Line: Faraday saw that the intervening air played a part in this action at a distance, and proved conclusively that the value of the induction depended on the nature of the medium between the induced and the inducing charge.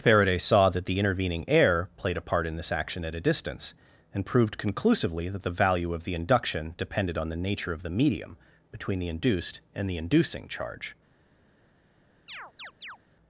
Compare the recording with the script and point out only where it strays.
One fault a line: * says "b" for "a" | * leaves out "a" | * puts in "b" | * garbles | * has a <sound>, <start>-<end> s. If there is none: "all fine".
* has a chirp, 12.3-13.0 s